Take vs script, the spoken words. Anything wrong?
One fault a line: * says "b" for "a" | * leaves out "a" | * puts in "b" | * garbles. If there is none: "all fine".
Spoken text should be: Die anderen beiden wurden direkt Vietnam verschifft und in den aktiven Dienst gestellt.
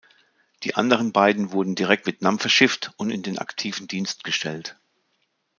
all fine